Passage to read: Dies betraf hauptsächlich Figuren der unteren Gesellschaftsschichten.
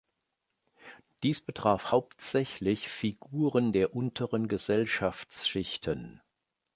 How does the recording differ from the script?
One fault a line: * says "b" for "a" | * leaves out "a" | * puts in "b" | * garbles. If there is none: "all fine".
all fine